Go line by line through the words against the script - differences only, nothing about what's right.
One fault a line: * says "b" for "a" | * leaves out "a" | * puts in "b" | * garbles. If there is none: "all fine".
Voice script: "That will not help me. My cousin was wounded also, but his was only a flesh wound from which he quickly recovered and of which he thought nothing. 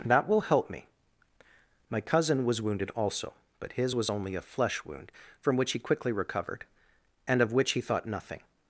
* leaves out "not"